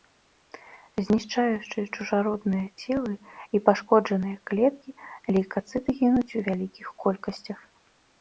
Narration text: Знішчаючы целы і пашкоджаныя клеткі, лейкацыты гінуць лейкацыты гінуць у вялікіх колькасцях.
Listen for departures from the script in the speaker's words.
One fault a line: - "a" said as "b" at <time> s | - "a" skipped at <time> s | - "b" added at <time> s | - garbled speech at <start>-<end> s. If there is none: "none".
- "чужародныя" added at 1.9 s
- "лейкацыты гінуць" skipped at 6.4 s